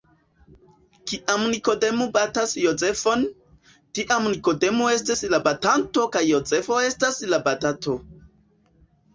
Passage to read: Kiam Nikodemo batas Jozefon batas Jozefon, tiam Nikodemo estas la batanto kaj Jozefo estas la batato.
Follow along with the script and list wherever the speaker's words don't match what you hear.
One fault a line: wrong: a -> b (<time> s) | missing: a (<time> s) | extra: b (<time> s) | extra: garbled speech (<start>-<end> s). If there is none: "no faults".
missing: batas Jozefon (3.2 s)